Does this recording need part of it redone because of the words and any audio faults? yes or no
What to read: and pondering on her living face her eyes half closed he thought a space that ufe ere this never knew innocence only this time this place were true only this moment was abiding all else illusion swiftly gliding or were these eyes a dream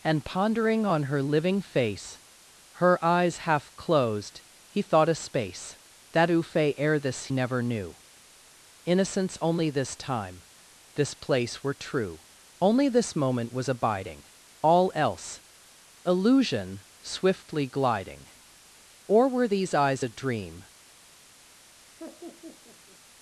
yes